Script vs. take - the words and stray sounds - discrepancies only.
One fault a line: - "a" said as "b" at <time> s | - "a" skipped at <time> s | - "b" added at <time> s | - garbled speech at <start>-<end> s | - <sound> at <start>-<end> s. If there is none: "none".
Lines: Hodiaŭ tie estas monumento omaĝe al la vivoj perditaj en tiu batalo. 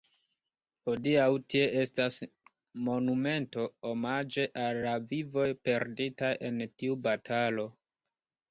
none